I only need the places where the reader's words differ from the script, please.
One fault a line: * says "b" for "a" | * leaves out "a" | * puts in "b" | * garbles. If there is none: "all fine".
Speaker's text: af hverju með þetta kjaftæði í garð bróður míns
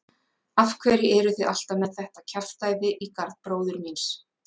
* puts in "eruð þið alltaf"